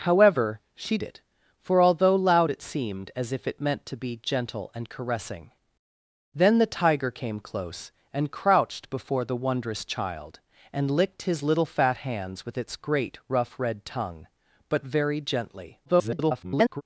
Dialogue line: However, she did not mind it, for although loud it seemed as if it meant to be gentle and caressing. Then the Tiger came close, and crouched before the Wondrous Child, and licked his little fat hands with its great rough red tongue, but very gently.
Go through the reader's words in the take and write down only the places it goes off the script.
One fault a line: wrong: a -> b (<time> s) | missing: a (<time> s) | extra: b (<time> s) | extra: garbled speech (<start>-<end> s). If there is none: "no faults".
missing: did not mind (1.0 s)
extra: garbled speech (15.9-16.8 s)